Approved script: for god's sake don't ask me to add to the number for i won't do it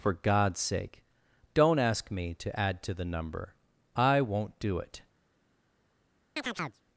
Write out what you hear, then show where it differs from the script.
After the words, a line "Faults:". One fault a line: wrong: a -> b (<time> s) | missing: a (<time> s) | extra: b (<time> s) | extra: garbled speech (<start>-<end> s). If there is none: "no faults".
for god's sake don't ask me to add to the number i won't do it
Faults:
missing: for (3.5 s)